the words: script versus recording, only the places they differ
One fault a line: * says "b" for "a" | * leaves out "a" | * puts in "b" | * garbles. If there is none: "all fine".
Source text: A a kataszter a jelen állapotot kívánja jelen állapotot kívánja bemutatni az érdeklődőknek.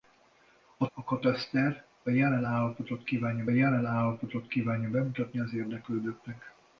all fine